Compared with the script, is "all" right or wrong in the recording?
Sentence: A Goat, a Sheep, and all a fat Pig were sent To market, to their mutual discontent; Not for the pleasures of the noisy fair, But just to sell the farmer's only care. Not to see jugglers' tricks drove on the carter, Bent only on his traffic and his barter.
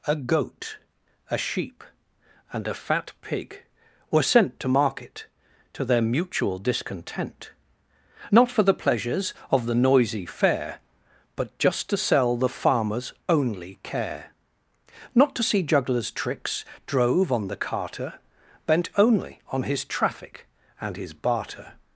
wrong